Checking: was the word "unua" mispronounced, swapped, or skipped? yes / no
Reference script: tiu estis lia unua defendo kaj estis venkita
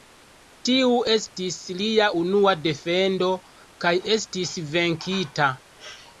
no